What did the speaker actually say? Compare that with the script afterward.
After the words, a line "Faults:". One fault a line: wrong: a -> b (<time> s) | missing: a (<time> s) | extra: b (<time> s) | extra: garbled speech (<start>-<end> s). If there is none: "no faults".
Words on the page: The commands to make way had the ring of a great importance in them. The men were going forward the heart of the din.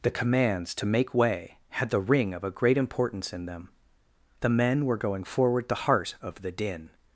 The commands to make way had the ring of a great importance in them. The men were going forward the heart of the din.
Faults:
no faults